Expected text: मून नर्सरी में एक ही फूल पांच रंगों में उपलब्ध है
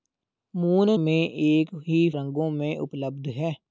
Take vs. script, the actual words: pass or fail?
fail